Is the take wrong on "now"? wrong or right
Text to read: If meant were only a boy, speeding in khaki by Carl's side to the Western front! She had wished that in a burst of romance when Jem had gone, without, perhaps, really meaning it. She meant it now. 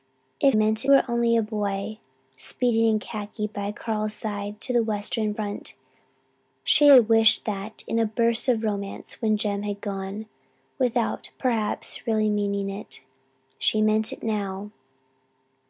right